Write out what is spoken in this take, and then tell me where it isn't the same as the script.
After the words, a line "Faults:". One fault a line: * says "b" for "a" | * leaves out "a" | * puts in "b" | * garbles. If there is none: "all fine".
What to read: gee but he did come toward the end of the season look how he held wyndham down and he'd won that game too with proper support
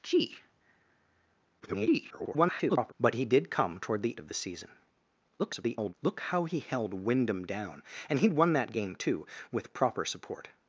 gee [garbled] but he did come toward the of the season [garbled] look how he held wyndham down and he'd won that game too with proper support
Faults:
* garbles
* leaves out "end"
* garbles